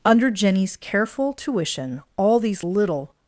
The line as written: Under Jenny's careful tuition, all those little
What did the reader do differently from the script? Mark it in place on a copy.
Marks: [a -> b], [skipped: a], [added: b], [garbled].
Under Jenny's careful tuition, all [those -> these] little